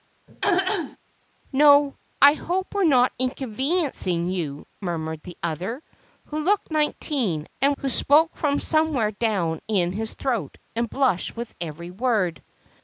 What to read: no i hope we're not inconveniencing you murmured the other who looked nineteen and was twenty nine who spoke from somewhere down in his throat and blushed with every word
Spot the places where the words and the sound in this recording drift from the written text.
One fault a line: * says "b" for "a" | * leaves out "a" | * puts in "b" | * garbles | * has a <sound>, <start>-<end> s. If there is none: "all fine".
* has a throat clearing, 0.3-1.0 s
* leaves out "was twenty nine"